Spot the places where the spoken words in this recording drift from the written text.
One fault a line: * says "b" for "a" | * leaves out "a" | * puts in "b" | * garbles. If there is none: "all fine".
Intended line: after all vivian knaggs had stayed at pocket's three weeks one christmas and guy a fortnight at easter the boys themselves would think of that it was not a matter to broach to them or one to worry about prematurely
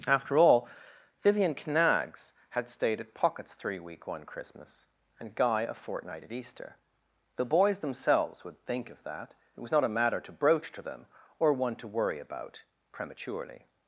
* says "week" for "weeks"